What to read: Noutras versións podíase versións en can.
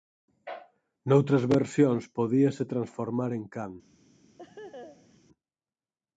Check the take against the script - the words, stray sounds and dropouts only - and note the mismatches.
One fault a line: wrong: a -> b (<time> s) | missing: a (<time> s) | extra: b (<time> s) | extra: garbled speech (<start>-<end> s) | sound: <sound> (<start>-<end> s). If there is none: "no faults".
wrong: versións -> transformar (2.7 s)
sound: laugh (4.4-5.2 s)